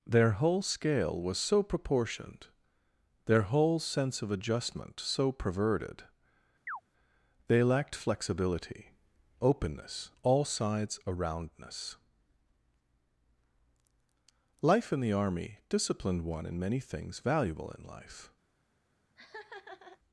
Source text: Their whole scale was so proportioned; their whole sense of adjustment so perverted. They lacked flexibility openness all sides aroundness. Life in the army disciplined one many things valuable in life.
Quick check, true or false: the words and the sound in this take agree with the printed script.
false